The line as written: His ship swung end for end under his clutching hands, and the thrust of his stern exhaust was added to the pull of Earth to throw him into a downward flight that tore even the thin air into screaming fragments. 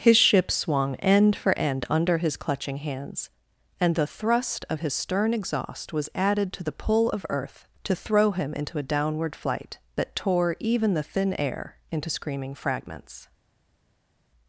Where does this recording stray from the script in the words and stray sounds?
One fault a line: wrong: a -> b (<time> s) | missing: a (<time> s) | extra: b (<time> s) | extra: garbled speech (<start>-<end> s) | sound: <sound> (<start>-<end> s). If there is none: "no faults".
no faults